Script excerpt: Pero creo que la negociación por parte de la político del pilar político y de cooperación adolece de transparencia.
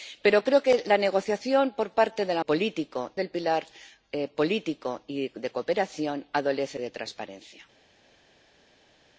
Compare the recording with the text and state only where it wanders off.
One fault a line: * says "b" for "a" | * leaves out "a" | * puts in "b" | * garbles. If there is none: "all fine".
all fine